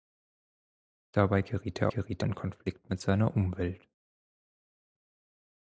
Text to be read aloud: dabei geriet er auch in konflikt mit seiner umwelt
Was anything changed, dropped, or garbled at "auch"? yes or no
yes